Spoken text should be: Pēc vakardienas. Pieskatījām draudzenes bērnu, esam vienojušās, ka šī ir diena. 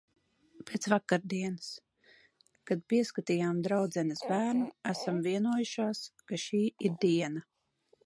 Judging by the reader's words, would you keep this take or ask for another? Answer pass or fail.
fail